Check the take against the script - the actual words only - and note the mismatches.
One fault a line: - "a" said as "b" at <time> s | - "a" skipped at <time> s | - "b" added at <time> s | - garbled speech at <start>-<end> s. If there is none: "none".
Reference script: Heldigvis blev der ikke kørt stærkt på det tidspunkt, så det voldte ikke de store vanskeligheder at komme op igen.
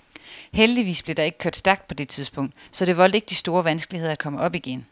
none